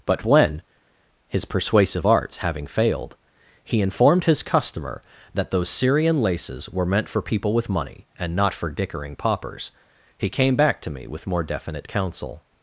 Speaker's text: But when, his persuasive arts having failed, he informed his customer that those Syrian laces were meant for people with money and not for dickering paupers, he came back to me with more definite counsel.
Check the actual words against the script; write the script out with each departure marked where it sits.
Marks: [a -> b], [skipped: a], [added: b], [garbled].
But when, his persuasive arts having failed, he informed his customer that those Syrian laces were meant for people with money and not for dickering paupers, he came back to me with more definite counsel.